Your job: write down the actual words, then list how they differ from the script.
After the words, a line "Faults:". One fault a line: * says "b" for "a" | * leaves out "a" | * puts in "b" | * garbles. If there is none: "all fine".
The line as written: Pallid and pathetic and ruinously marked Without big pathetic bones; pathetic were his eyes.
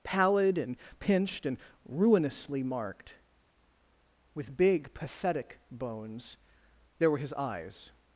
Pallid and pinched and ruinously marked With big pathetic bones; there were his eyes.
Faults:
* says "pinched" for "pathetic"
* says "With" for "Without"
* says "there" for "pathetic"